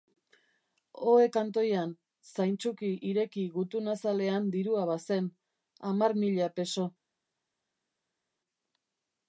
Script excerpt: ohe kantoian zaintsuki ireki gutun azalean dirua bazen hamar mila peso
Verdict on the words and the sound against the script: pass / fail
pass